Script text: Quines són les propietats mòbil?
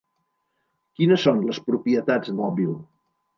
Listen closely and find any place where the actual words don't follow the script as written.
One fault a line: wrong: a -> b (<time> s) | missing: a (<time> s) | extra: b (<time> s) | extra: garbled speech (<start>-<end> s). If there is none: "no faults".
no faults